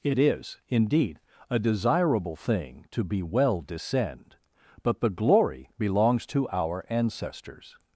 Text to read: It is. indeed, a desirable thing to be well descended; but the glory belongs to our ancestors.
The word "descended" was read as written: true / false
false